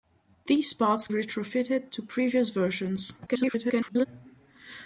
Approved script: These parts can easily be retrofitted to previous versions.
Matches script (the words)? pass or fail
fail